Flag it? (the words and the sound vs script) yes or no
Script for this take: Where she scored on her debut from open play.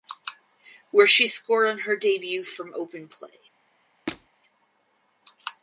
yes